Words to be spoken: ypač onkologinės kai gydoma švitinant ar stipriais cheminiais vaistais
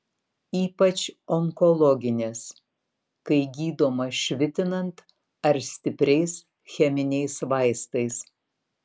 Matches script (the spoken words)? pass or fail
pass